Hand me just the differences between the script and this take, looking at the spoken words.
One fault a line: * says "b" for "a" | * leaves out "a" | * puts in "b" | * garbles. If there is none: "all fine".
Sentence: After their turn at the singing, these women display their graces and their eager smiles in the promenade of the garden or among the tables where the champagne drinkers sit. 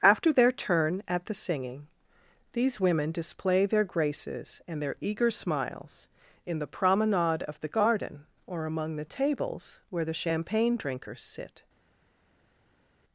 all fine